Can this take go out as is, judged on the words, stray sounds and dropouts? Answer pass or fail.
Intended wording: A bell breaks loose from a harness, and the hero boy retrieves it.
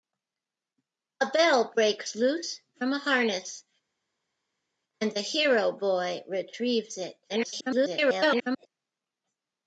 fail